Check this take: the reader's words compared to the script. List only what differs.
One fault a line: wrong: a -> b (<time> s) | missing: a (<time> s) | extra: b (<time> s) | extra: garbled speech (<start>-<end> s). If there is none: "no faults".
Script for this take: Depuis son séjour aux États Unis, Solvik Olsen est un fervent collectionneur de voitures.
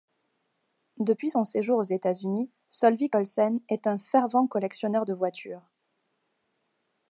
no faults